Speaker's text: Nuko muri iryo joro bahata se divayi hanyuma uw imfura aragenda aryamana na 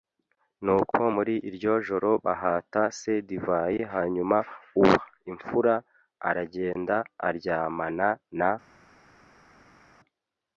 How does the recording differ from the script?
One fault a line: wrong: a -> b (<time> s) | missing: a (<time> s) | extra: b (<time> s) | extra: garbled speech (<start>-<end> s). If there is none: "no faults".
no faults